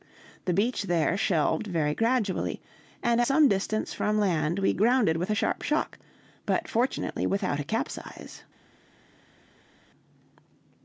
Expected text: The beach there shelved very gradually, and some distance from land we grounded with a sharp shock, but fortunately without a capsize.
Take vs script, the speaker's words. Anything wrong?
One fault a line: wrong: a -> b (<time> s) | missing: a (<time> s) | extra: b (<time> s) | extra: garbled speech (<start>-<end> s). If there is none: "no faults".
no faults